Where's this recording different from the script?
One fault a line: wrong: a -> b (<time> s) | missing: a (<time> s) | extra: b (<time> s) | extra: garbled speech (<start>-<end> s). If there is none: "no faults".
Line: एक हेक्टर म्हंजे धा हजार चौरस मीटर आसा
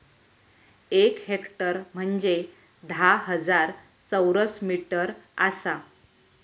no faults